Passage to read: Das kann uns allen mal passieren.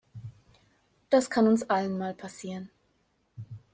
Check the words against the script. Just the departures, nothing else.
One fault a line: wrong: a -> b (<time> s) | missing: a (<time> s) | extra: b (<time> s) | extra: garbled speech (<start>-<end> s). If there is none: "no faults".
no faults